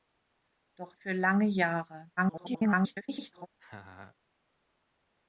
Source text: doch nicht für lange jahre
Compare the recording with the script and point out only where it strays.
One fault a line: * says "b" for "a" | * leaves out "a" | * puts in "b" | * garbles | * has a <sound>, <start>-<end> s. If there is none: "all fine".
* leaves out "nicht"
* garbles
* has a laugh, 3.6-4.2 s